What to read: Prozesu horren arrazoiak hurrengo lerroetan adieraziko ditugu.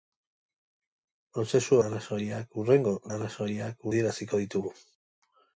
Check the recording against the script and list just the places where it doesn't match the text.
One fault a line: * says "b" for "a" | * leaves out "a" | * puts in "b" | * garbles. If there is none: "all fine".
* leaves out "horren"
* says "arrazoiak" for "lerroetan"